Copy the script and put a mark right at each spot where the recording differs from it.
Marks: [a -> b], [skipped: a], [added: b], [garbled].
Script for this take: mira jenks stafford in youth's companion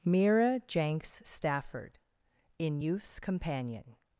mira jenks stafford in youth's companion